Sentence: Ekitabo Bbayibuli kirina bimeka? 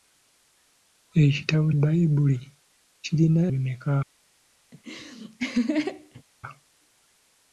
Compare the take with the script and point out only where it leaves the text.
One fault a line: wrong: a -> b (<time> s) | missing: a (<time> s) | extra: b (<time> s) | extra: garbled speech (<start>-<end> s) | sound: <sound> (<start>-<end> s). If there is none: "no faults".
sound: laugh (4.7-6.2 s)